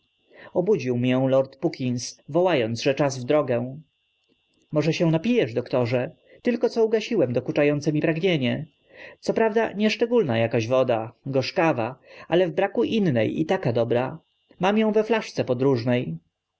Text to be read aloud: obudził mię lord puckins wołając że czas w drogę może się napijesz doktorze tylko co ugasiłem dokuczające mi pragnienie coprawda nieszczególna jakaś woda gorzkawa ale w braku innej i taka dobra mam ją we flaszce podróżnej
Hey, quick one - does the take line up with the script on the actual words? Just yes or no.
yes